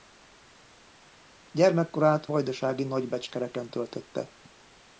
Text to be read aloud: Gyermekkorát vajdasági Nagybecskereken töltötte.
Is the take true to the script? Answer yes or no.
yes